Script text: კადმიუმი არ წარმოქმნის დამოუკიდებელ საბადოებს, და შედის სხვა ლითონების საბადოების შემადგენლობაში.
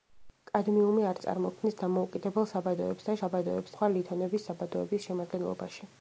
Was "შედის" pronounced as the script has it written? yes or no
no